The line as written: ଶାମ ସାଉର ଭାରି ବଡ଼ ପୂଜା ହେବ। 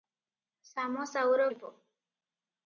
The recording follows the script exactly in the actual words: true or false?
false